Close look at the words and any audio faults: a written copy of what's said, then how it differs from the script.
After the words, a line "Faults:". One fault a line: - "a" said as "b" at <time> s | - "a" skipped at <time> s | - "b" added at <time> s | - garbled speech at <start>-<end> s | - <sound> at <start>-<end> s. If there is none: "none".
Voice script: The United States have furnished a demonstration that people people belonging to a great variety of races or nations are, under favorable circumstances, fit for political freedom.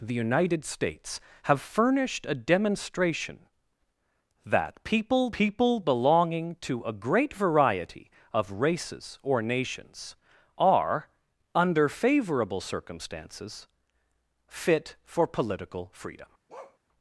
The United States have furnished a demonstration that people people belonging to a great variety of races or nations are, under favorable circumstances, fit for political freedom.
Faults:
- bark at 16.5-16.8 s